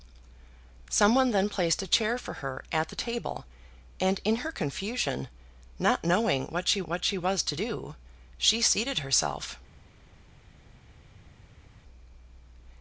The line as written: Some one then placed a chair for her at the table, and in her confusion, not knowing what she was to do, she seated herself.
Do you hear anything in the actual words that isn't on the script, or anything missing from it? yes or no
yes